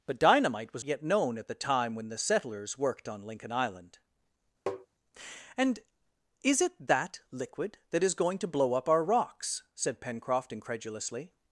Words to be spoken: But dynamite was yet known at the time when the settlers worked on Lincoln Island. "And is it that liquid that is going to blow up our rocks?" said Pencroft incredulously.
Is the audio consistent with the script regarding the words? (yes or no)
yes